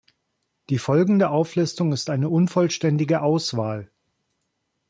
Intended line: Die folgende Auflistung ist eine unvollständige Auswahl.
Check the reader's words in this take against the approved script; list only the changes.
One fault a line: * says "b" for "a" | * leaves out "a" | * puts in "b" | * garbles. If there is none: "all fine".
all fine